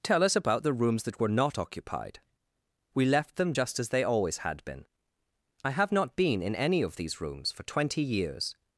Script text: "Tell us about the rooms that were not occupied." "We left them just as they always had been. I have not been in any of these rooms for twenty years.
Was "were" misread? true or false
false